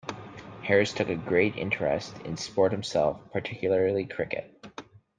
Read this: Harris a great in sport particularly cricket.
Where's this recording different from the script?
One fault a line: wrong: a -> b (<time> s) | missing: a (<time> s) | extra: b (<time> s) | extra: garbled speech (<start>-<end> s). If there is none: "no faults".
extra: took (0.9 s)
extra: interest (1.6 s)
extra: himself (2.7 s)